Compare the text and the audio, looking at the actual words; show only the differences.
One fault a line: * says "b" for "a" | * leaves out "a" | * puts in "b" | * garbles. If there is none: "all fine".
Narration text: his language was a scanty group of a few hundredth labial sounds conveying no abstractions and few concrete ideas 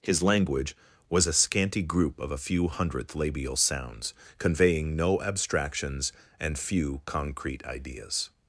all fine